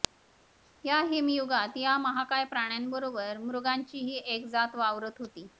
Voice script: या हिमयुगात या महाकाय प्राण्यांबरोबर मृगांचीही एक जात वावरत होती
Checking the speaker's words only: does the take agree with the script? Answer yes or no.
yes